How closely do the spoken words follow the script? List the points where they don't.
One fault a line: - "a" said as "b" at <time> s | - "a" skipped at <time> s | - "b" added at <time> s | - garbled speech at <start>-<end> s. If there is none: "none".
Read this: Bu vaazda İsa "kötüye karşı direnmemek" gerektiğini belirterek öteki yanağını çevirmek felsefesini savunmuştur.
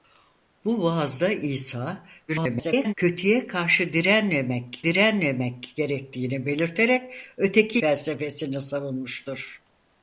- garbled speech at 2.3-2.9 s
- "direnmemek" added at 4.8 s
- "yanağını çevirmek" skipped at 7.8 s